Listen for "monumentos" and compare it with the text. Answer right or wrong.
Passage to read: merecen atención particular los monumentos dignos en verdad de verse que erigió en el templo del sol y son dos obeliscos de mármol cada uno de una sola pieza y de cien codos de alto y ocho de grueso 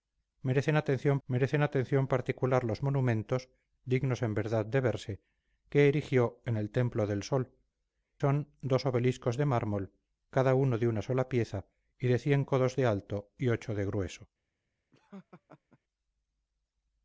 right